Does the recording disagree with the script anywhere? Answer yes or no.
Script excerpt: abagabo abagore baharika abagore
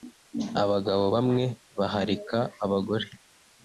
yes